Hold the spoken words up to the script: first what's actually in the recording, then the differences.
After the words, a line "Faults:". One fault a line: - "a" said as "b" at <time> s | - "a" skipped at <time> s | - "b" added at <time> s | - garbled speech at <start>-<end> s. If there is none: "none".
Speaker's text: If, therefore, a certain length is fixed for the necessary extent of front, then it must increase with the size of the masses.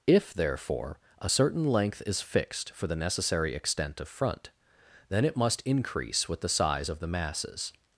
If, therefore, a certain length is fixed for the necessary extent of front, then it must increase with the size of the masses.
Faults:
none